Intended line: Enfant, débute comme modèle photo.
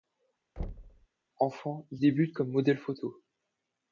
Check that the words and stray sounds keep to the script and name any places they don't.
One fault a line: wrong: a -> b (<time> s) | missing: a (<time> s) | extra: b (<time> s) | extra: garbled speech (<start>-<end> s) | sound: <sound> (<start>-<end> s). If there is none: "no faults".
sound: thud (0.6-1.1 s)
extra: il (1.9 s)